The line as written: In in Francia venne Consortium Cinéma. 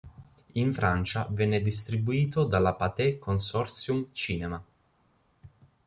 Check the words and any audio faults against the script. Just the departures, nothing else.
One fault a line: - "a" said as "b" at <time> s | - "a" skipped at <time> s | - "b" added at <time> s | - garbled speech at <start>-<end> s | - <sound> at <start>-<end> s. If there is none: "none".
- "in" skipped at 0.7 s
- "distribuito dalla Pathé" added at 1.6 s